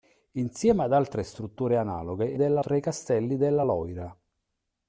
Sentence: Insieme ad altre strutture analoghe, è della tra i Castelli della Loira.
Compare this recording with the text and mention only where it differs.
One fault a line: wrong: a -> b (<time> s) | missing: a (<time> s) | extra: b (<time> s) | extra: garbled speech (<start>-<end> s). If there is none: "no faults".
no faults